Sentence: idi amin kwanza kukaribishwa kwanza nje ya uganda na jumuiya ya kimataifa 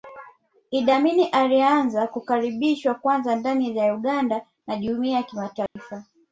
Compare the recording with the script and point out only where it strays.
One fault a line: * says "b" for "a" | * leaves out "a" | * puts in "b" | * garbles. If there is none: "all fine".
* says "alianza" for "kwanza"
* says "ndani" for "nje"